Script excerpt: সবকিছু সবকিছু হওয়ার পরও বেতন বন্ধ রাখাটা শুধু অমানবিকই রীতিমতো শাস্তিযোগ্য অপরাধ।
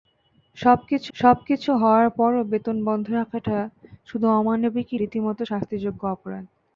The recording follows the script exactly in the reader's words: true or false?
true